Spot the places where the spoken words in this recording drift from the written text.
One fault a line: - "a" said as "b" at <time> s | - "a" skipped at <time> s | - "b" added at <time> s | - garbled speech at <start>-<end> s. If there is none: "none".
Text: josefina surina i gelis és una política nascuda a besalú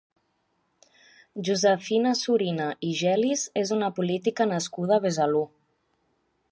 none